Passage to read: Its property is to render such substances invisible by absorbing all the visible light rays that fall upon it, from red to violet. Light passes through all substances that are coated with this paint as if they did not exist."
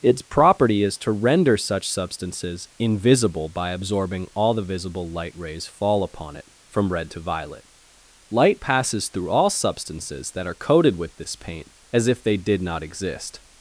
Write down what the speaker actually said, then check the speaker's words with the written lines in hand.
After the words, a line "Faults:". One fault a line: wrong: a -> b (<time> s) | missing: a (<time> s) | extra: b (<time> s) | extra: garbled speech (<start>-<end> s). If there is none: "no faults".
Its property is to render such substances invisible by absorbing all the visible light rays fall upon it, from red to violet. Light passes through all substances that are coated with this paint as if they did not exist."
Faults:
missing: that (5.7 s)